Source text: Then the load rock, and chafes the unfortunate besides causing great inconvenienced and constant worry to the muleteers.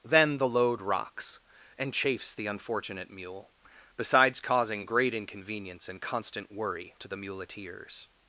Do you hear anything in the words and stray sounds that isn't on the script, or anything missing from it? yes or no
yes